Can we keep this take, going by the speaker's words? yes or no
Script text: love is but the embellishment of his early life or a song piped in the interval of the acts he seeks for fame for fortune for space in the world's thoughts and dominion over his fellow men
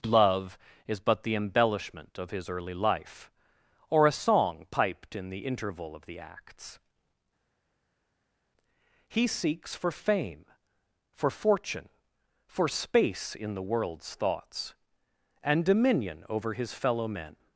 yes